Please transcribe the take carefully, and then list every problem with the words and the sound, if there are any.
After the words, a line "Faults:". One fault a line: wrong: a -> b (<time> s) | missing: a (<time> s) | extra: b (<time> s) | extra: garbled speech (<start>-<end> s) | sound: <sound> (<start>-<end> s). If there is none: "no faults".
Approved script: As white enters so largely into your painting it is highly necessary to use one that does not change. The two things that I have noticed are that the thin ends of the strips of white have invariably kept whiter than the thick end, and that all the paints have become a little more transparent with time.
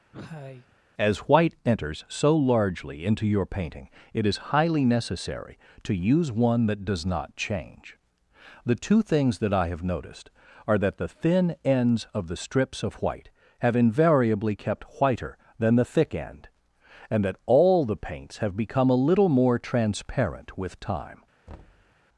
As white enters so largely into your painting it is highly necessary to use one that does not change. The two things that I have noticed are that the thin ends of the strips of white have invariably kept whiter than the thick end, and that all the paints have become a little more transparent with time.
Faults:
sound: cough (0.1-0.8 s)
sound: thud (21.5-22.0 s)